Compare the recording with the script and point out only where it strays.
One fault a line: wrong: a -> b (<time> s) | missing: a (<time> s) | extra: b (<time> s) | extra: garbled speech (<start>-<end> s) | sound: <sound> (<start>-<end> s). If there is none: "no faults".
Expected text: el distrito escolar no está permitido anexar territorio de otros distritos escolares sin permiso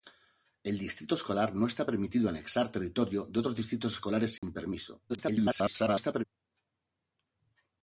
sound: dropout (4.4-4.4 s)
extra: garbled speech (5.1-6.2 s)